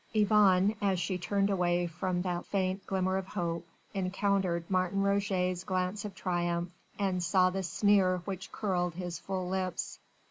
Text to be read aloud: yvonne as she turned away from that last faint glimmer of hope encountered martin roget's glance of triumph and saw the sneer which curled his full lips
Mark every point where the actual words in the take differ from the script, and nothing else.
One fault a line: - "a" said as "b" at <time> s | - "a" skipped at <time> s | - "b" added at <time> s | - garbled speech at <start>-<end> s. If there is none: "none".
- "last" skipped at 2.5 s